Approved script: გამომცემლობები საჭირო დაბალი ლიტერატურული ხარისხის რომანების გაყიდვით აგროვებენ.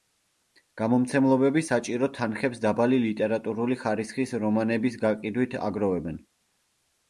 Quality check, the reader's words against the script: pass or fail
fail